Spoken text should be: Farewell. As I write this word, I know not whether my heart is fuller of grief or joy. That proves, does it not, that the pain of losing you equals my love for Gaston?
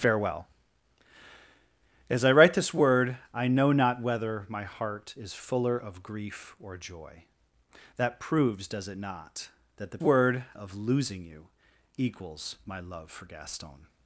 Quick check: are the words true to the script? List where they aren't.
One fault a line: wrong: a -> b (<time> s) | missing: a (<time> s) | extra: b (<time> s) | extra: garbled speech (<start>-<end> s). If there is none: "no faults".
wrong: pain -> word (10.0 s)